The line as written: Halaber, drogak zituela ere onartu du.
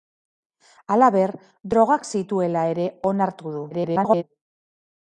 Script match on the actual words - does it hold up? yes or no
no